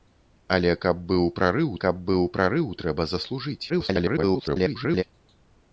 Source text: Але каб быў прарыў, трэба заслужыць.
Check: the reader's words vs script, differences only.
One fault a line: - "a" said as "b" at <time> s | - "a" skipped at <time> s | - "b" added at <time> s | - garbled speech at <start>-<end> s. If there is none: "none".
- "каб быў прарыў" added at 1.8 s
- garbled speech at 3.7-5.0 s